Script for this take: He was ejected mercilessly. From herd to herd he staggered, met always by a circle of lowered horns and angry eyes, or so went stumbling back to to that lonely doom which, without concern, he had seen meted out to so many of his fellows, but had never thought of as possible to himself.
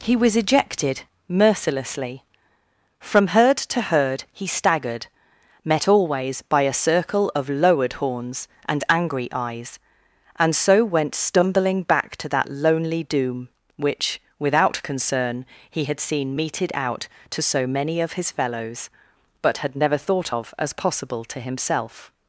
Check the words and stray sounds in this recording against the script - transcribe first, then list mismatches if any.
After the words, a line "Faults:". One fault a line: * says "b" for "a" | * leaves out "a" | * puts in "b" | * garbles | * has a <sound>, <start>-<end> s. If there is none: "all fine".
He was ejected mercilessly. From herd to herd he staggered, met always by a circle of lowered horns and angry eyes, and so went stumbling back to that lonely doom which, without concern, he had seen meted out to so many of his fellows, but had never thought of as possible to himself.
Faults:
* says "and" for "or"
* leaves out "to"